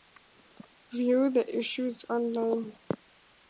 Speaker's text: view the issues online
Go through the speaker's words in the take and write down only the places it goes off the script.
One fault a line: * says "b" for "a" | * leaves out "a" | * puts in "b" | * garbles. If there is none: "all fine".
all fine